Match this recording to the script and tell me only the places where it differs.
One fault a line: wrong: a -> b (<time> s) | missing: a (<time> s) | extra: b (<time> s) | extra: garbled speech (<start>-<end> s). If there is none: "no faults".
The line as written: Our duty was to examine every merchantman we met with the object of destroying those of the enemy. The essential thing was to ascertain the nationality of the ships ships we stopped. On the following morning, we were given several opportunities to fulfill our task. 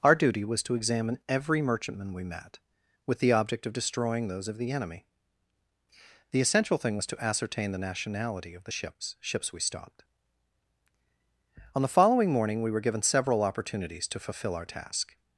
no faults